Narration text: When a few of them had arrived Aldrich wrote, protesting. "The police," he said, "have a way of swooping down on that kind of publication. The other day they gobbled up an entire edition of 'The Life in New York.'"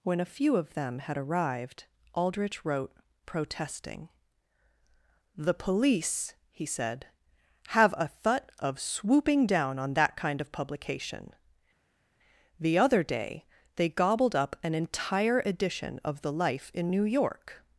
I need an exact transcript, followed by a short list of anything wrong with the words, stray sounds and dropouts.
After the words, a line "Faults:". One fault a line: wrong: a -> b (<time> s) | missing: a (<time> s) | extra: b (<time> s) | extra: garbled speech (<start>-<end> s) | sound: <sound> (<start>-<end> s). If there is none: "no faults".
When a few of them had arrived Aldrich wrote, protesting. "The police," he said, "have a thut of swooping down on that kind of publication. The other day they gobbled up an entire edition of 'The Life in New York.'"
Faults:
wrong: way -> thut (8.1 s)